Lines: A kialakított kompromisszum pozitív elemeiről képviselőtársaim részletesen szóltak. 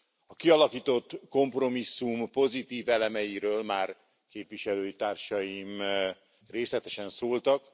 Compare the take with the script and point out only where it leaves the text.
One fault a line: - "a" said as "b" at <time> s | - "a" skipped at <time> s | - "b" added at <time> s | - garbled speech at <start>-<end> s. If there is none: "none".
- "már" added at 3.6 s